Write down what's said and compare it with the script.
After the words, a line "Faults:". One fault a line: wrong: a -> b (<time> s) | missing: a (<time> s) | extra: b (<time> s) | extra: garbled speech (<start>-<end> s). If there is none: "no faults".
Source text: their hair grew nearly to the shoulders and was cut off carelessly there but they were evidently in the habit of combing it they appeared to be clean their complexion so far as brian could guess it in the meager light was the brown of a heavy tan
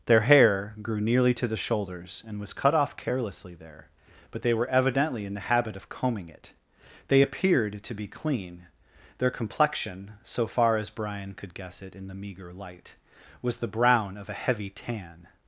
their hair grew nearly to the shoulders and was cut off carelessly there but they were evidently in the habit of combing it they appeared to be clean their complexion so far as brian could guess it in the meager light was the brown of a heavy tan
Faults:
no faults